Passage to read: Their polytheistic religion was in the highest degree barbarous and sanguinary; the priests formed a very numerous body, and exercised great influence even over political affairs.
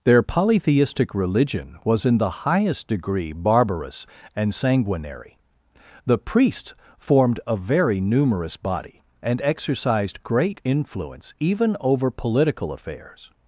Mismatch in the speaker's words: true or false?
false